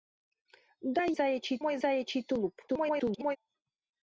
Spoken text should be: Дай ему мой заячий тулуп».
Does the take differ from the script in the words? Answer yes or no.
yes